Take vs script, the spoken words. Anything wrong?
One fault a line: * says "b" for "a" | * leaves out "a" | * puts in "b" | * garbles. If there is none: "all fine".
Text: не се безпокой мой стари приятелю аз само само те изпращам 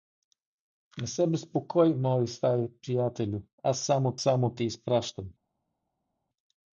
all fine